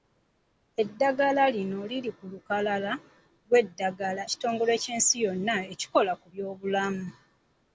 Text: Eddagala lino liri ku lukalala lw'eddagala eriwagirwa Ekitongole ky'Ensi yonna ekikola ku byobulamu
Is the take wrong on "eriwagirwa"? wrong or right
wrong